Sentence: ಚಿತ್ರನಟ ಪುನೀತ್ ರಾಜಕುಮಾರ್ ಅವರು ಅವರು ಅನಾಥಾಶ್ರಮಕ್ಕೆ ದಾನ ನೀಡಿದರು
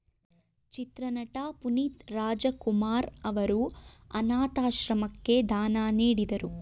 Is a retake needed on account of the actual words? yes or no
yes